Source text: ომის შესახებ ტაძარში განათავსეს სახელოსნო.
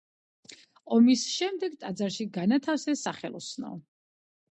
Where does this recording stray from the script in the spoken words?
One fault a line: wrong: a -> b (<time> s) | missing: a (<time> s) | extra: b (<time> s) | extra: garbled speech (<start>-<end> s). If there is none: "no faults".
wrong: შესახებ -> შემდეგ (1.3 s)